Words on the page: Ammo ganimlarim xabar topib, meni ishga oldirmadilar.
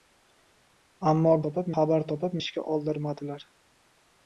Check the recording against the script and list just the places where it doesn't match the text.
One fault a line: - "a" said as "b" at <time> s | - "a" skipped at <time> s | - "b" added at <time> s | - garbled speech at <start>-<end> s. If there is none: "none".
- "ganimlarim" said as "topib" at 1.5 s
- "meni" skipped at 2.4 s